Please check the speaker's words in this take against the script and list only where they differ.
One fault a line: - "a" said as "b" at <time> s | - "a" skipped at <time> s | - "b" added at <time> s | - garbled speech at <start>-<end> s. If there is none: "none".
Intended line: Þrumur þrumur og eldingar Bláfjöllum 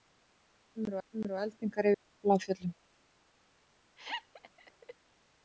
none